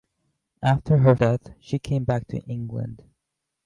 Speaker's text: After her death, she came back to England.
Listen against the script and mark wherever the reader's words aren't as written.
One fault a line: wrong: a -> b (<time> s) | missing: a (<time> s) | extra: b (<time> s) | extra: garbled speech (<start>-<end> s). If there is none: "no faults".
no faults